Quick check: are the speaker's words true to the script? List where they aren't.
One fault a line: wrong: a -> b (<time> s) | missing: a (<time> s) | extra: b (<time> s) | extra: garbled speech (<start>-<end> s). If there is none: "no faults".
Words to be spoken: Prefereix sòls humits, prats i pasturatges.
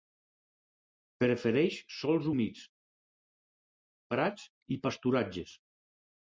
no faults